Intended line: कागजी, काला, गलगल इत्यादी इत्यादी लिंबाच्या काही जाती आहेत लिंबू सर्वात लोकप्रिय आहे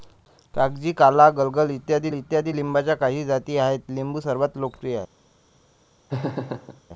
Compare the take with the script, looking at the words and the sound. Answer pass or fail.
fail